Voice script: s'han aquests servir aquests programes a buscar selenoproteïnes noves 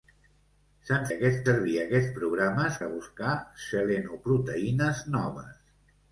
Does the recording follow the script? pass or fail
pass